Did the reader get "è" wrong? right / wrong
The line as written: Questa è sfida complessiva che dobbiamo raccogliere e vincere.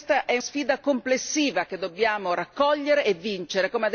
right